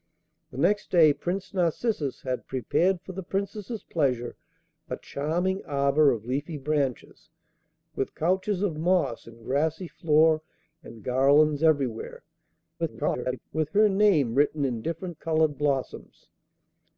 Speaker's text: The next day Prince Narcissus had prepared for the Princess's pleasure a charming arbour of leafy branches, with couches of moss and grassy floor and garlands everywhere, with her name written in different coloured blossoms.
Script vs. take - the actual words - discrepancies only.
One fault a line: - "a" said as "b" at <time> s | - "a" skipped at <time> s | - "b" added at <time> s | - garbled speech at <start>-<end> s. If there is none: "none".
- garbled speech at 12.8-13.4 s